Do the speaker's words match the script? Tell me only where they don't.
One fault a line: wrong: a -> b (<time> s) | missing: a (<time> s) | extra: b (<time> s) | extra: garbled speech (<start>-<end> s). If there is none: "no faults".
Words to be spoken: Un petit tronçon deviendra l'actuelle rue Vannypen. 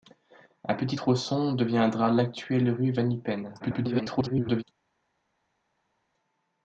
extra: garbled speech (3.6-4.6 s)